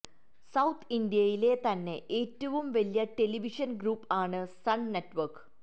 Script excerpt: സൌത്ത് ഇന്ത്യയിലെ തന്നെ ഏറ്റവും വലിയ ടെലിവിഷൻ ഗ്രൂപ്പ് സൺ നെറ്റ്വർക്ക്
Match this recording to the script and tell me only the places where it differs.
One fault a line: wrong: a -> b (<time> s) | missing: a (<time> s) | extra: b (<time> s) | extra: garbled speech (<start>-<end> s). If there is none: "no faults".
extra: ആണ് (4.2 s)